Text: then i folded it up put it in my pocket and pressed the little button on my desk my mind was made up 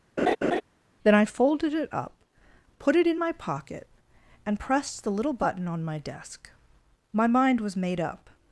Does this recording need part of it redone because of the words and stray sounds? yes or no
yes